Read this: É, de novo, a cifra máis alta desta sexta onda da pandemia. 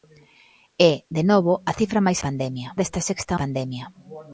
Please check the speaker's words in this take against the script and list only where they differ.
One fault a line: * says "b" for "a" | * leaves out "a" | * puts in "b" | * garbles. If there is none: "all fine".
* says "pandemia" for "alta"
* leaves out "onda da"